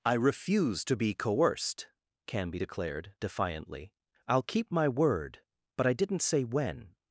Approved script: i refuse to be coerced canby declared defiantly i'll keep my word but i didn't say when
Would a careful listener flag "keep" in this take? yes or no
no